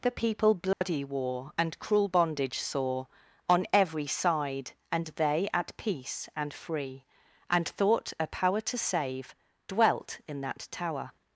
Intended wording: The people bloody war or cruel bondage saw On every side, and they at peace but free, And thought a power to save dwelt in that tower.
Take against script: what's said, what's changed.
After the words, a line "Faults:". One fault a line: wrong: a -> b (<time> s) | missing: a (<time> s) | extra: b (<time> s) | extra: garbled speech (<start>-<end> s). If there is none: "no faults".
The people bloody war and cruel bondage saw On every side, and they at peace and free, And thought a power to save dwelt in that tower.
Faults:
wrong: or -> and (1.6 s)
wrong: but -> and (6.3 s)